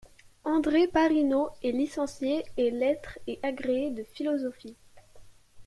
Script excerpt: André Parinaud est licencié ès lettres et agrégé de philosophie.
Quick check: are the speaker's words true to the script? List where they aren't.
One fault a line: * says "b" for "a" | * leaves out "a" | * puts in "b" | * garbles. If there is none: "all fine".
all fine